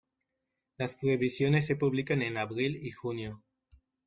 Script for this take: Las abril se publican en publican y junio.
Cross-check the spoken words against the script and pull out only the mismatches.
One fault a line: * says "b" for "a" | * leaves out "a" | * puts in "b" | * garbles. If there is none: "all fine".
* says "previsiones" for "abril"
* says "abril" for "publican"